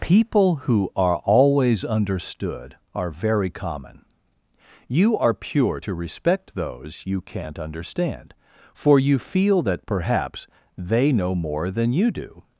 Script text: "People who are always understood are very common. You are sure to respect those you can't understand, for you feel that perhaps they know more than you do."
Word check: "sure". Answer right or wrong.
wrong